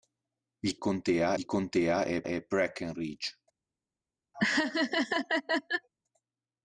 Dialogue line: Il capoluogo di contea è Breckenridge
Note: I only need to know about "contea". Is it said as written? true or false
true